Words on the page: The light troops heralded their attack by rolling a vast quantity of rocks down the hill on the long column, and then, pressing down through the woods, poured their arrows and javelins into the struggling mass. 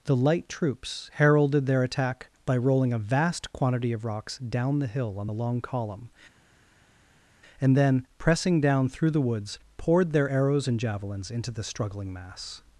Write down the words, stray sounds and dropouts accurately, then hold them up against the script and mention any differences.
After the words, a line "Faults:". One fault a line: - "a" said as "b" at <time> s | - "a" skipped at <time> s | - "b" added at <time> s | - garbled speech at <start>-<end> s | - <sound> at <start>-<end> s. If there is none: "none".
The light troops heralded their attack by rolling a vast quantity of rocks down the hill on the long column, and then, pressing down through the woods, poured their arrows and javelins into the struggling mass.
Faults:
none